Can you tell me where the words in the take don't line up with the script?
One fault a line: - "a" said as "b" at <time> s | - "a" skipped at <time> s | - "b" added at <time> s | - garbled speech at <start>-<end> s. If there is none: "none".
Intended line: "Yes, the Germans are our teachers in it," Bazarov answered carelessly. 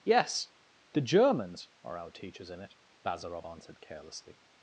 none